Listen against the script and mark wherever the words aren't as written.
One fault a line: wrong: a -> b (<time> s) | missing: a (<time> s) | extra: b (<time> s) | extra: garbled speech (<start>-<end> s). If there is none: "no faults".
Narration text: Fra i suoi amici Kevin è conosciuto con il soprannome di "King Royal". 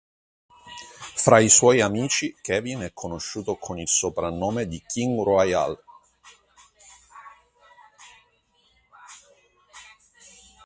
no faults